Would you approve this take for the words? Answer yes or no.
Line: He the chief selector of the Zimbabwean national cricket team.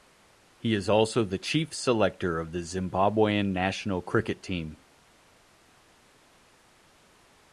no